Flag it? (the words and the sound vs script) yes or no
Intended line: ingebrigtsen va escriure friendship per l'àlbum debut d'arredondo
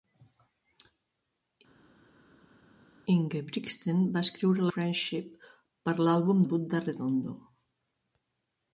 no